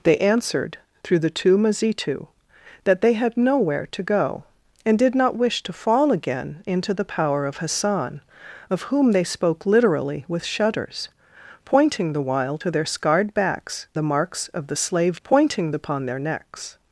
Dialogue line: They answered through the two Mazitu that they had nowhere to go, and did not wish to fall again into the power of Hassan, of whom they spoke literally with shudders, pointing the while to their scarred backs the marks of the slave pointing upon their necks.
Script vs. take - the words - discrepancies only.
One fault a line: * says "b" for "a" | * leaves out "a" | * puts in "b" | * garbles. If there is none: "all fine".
all fine